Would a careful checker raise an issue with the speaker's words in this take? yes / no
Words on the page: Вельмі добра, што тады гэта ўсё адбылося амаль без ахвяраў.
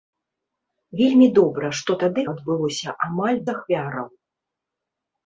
yes